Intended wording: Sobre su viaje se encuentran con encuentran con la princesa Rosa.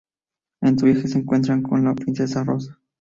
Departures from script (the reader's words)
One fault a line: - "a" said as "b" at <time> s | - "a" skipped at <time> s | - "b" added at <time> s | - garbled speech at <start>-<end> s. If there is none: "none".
- "Sobre" said as "En" at 0.6 s
- "encuentran con" skipped at 1.8 s